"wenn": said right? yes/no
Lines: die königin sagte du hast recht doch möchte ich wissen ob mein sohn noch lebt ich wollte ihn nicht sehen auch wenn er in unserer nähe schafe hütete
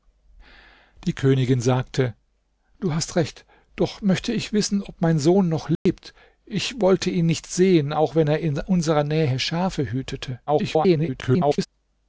yes